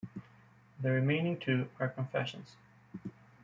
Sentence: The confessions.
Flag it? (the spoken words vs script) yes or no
yes